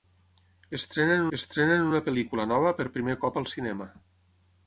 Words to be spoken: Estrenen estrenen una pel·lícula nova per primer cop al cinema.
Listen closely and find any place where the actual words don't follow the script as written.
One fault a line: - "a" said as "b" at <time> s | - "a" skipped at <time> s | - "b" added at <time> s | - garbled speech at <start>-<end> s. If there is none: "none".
none